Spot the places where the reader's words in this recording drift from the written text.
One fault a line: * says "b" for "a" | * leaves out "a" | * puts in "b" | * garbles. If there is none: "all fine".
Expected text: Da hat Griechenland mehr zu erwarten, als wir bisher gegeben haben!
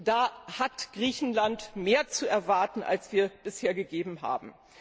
all fine